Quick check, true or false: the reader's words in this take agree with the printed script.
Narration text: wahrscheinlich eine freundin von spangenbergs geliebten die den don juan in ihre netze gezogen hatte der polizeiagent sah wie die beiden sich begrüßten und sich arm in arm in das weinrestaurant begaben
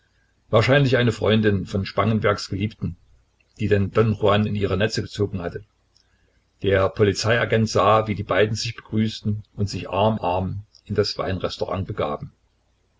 false